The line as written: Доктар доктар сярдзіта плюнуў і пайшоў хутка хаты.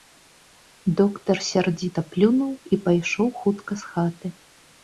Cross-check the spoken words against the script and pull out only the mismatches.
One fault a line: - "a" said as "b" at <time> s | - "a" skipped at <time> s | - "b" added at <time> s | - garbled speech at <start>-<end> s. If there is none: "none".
- "доктар" skipped at 1.4 s
- "з" added at 3.8 s